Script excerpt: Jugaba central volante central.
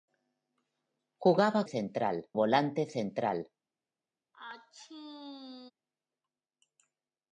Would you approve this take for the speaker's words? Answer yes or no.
yes